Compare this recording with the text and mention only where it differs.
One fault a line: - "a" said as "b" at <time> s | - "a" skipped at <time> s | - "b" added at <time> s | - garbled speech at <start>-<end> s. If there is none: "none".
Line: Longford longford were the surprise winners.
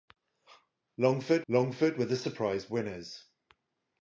none